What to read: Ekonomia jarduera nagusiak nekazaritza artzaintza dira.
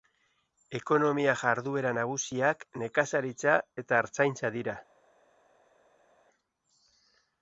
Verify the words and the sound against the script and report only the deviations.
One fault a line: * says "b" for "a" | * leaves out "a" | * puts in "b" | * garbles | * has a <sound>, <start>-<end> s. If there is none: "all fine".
* puts in "eta"